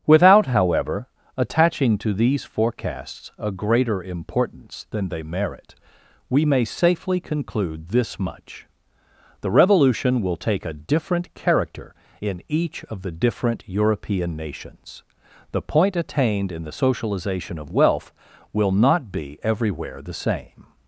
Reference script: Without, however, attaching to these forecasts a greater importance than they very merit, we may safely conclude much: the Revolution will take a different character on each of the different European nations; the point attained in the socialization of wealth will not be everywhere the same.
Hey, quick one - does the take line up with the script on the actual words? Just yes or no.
no